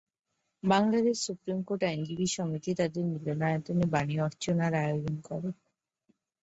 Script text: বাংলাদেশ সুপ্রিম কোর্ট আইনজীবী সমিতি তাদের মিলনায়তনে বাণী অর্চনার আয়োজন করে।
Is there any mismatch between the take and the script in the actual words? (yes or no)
no